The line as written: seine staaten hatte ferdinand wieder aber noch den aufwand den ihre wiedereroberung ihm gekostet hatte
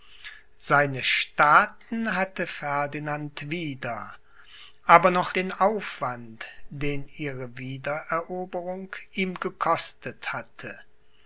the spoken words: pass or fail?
pass